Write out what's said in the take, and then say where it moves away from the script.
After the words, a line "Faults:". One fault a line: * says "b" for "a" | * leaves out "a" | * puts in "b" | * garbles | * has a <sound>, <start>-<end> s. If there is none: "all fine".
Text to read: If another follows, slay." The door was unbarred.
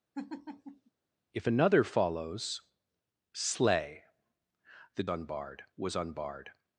If another follows, slay." The unbarred was unbarred.
Faults:
* has a laugh, 0.1-0.9 s
* says "unbarred" for "door"